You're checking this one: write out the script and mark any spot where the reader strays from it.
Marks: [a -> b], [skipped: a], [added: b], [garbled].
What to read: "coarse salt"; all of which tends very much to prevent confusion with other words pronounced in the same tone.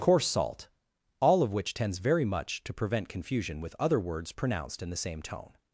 "coarse salt"; all of which tends very much to prevent confusion with other words pronounced in the same tone.